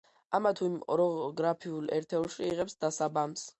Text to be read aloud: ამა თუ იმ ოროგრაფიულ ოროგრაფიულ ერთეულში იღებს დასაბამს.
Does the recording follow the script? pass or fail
fail